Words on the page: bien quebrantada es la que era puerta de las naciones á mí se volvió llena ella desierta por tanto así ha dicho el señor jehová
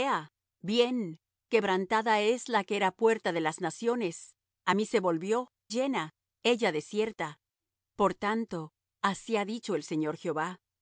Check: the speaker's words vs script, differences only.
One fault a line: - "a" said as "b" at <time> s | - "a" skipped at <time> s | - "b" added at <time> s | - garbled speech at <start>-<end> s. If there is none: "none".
none